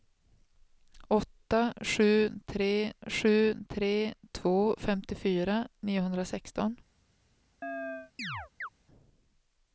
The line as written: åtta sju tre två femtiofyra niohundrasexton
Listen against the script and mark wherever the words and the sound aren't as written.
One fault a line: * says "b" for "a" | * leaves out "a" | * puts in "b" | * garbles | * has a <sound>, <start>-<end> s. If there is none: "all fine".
* puts in "sju tre"
* has a chirp, 7.6-8.7 s